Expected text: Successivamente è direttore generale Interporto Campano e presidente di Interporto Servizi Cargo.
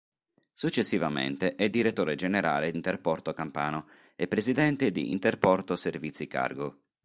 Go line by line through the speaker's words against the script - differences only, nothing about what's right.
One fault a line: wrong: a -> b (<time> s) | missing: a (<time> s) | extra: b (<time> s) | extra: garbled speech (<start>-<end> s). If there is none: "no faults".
no faults